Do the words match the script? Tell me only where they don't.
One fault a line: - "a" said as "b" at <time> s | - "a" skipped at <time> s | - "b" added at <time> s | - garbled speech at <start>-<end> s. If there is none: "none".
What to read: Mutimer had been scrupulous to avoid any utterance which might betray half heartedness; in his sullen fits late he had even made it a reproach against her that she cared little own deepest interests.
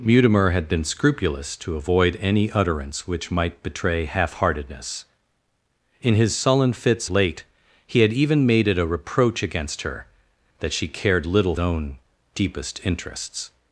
none